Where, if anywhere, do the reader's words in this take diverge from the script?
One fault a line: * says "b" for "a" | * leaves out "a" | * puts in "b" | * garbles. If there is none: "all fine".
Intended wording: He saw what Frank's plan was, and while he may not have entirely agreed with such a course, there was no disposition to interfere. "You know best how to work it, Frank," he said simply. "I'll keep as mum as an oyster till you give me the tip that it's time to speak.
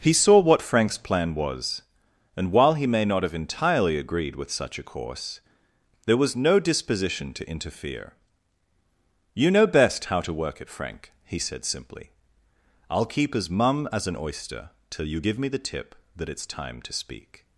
all fine